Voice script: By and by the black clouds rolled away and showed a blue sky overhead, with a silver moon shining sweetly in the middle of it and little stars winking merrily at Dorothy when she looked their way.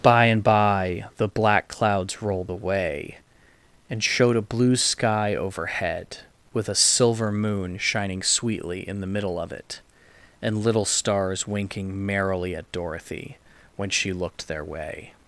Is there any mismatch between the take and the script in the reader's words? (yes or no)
no